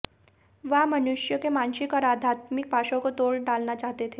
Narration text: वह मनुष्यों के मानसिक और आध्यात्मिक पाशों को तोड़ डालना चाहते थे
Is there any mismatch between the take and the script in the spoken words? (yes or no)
no